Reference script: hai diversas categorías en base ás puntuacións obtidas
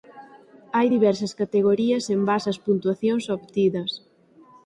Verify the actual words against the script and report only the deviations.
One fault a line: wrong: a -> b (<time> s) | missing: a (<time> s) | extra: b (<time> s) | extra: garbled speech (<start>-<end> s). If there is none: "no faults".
no faults